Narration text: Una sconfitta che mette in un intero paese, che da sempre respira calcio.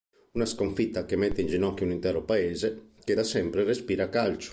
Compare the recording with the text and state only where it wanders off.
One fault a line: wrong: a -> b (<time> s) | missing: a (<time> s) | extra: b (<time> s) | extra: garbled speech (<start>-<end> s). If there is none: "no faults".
extra: ginocchio (1.5 s)